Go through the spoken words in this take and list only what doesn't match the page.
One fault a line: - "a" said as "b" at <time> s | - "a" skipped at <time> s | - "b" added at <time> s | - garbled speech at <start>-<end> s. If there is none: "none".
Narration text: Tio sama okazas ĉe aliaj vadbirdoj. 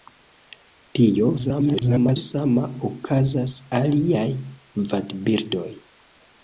- garbled speech at 1.4-2.2 s
- "ĉe" skipped at 3.5 s